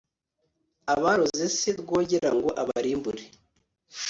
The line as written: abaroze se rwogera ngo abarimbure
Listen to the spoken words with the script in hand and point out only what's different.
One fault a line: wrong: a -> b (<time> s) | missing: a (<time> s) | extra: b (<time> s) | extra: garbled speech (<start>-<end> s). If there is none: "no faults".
no faults